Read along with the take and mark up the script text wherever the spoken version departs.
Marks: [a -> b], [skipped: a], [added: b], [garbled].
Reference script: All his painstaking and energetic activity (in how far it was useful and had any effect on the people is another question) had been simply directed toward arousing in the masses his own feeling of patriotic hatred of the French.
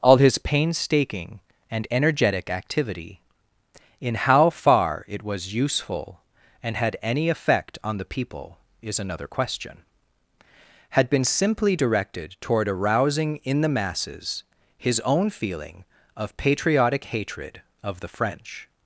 All his painstaking and energetic activity (in how far it was useful and had any effect on the people is another question) had been simply directed toward arousing in the masses his own feeling of patriotic hatred of the French.